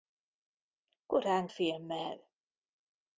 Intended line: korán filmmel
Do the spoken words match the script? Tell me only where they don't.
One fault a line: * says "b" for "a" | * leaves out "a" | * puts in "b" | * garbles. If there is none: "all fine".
all fine